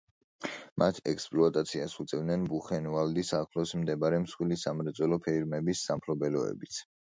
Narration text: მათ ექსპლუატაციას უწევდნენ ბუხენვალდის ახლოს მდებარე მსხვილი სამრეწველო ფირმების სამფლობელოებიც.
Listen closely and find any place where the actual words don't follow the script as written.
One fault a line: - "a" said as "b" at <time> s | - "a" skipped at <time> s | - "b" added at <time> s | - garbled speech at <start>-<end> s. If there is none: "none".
none